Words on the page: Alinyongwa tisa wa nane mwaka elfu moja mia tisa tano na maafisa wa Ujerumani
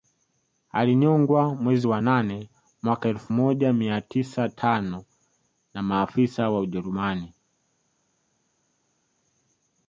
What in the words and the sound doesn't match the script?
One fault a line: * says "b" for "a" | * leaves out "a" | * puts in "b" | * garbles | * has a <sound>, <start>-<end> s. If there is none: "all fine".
* says "mwezi" for "tisa"